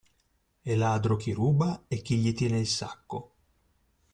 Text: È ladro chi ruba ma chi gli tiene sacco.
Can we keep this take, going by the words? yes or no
no